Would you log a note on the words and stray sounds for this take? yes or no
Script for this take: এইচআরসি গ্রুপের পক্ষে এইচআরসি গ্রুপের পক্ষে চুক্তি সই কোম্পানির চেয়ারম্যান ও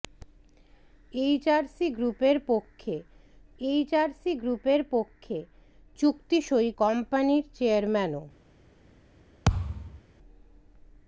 yes